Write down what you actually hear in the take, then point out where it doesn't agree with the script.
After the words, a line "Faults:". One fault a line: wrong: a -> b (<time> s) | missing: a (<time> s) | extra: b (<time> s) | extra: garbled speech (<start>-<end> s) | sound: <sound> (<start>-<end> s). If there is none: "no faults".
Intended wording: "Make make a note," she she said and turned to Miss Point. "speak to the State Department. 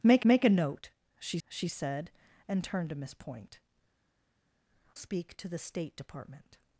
"Make make a note," she she said and turned to Miss Point. "speak to the State Department.
Faults:
no faults